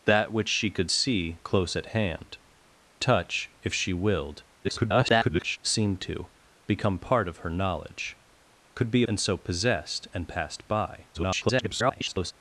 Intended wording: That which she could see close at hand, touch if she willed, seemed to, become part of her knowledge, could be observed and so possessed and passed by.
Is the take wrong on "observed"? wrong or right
wrong